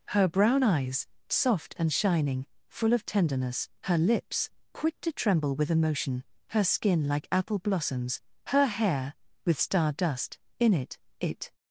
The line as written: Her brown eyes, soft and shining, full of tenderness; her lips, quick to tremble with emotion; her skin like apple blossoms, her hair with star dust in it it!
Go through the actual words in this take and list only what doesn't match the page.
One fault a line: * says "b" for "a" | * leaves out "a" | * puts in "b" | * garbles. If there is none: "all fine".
all fine